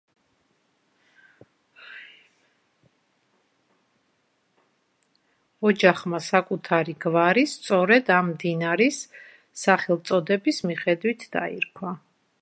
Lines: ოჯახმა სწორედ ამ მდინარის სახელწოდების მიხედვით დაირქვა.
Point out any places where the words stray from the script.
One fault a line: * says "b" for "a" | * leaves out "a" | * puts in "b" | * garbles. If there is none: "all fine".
* puts in "საკუთარი გვარი"